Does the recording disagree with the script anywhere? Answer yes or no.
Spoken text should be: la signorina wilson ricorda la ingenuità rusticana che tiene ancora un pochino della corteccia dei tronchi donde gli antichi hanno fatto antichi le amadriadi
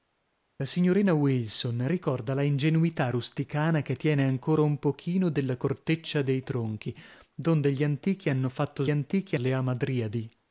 no